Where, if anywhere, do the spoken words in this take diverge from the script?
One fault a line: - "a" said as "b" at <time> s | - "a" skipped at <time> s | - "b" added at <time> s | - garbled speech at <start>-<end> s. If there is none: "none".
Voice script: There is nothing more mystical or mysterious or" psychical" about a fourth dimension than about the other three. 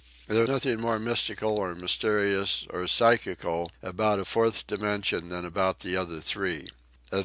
- "is" skipped at 0.4 s